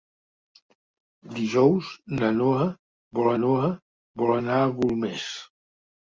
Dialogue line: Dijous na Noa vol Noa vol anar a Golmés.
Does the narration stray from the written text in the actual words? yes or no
no